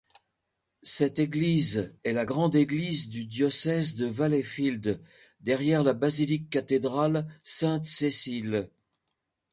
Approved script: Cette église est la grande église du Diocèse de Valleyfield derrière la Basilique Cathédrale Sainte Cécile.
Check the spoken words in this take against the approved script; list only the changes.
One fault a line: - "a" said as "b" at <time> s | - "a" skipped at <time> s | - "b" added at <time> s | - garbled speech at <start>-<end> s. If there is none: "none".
none